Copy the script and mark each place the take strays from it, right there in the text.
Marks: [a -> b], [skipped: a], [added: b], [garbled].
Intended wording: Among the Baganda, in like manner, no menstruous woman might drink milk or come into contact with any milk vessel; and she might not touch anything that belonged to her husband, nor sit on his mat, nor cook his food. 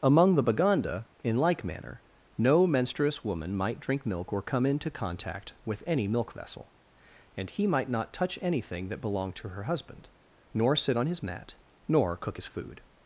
Among the Baganda, in like manner, no menstruous woman might drink milk or come into contact with any milk vessel; and [she -> he] might not touch anything that belonged to her husband, nor sit on his mat, nor cook his food.